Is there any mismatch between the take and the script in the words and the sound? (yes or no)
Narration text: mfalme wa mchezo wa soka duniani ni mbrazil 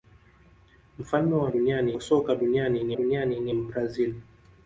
yes